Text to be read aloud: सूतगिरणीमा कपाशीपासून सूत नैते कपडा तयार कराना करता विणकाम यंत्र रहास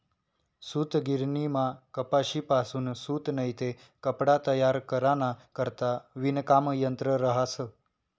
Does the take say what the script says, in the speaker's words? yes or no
yes